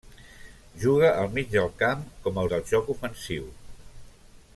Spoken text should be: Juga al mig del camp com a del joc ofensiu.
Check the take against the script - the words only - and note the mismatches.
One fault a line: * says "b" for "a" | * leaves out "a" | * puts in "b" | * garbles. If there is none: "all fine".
all fine